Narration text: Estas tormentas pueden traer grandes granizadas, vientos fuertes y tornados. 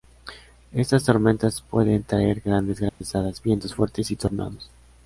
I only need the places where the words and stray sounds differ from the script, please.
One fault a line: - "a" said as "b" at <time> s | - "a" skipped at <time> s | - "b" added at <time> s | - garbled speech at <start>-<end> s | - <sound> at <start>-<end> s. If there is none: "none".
- dropout at 2.9-3.0 s